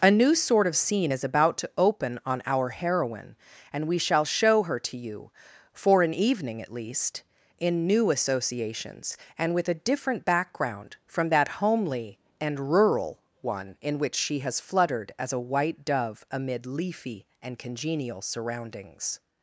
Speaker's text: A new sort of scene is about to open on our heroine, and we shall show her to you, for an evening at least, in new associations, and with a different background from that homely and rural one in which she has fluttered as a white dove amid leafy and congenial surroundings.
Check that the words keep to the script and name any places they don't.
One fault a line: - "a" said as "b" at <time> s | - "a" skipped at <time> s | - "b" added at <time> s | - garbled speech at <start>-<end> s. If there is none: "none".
none